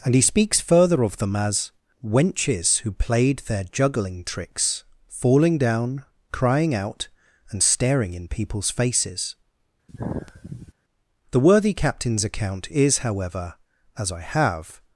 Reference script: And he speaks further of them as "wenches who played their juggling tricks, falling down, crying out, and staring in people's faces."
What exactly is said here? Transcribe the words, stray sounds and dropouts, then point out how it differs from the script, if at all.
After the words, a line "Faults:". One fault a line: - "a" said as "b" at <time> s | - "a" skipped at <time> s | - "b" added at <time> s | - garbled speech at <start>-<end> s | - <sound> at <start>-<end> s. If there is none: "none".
And he speaks further of them as "wenches who played their juggling tricks, falling down, crying out, and staring in people's faces." The worthy Captain's account is however, as I have
Faults:
- sigh at 9.9-10.7 s
- "The worthy Captain's account is however as I have" added at 11.3 s